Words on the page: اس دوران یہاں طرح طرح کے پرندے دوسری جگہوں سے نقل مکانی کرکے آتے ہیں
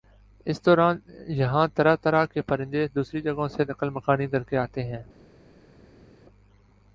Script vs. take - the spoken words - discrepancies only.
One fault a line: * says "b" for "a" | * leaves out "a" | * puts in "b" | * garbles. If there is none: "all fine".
all fine